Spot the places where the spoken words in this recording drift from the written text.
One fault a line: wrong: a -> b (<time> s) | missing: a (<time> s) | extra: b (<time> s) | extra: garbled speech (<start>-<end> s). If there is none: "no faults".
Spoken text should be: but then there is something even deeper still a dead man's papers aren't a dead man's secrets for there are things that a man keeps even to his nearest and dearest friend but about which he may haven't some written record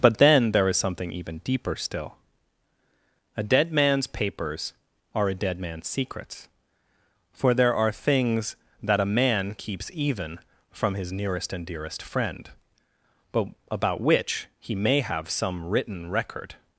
wrong: aren't -> are (5.2 s)
wrong: to -> from (10.7 s)
wrong: haven't -> have (15.0 s)